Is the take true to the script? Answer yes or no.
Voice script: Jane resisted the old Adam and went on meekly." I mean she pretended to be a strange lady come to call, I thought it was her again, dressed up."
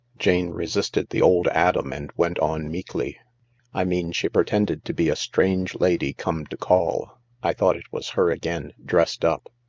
yes